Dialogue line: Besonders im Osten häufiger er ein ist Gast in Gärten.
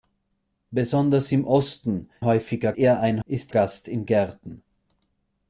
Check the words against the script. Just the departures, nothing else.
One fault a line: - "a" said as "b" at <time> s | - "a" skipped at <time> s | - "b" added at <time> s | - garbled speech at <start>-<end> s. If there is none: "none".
none